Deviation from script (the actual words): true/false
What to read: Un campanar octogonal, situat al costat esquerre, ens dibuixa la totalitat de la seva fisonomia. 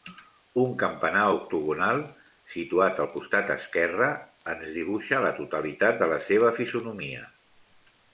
false